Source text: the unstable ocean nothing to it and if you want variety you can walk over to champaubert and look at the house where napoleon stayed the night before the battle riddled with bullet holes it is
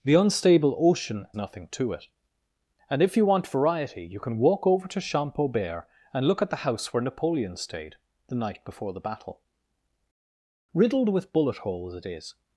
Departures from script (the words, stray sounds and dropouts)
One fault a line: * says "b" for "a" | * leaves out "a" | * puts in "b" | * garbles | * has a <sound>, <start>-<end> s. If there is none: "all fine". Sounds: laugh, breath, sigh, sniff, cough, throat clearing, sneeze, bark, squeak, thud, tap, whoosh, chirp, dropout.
all fine